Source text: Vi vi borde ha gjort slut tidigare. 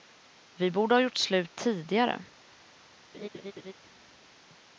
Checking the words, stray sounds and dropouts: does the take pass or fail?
fail